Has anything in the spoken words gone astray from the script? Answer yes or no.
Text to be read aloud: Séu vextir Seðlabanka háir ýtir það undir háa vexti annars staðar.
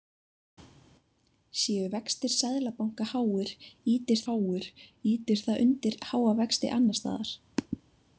yes